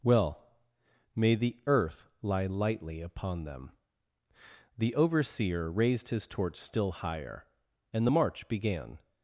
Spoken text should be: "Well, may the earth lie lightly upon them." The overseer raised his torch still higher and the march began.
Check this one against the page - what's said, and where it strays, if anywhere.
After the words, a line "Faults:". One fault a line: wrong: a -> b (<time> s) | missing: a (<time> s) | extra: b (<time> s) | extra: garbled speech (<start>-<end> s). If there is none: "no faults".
"Well, may the earth lie lightly upon them." The overseer raised his torch still higher and the march began.
Faults:
no faults